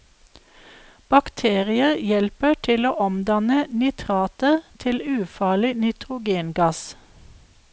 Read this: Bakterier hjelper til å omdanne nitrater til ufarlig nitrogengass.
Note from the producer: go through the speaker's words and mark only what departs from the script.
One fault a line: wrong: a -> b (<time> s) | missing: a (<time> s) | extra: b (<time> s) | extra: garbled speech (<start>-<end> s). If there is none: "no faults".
no faults